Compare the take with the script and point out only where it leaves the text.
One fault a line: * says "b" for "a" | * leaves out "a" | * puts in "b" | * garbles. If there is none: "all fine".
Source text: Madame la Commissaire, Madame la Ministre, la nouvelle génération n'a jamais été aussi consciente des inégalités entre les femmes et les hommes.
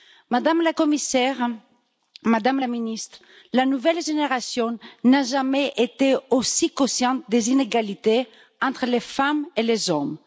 all fine